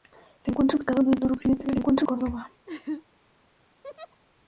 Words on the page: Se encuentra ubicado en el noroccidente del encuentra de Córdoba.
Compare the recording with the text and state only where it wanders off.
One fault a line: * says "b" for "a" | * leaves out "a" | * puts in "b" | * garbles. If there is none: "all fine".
all fine